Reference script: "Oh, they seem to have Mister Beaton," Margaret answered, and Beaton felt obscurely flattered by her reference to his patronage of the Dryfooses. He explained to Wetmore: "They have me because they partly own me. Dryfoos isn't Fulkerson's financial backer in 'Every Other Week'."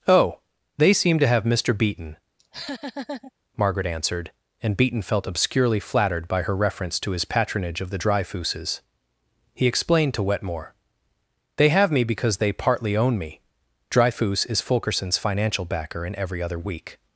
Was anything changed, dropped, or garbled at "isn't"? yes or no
yes